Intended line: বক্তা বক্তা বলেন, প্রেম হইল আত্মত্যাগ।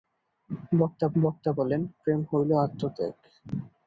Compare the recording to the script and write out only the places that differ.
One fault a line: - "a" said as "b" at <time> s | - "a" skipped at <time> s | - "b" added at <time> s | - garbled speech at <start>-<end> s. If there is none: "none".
none